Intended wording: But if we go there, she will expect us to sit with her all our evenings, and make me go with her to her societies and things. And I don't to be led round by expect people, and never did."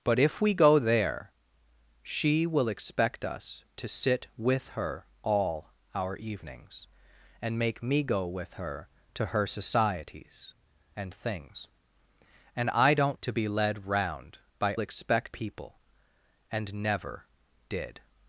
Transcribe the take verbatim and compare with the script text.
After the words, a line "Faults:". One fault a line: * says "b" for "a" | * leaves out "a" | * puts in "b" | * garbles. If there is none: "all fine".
But if we go there, she will expect us to sit with her all our evenings, and make me go with her to her societies and things. And I don't to be led round by expect people, and never did."
Faults:
all fine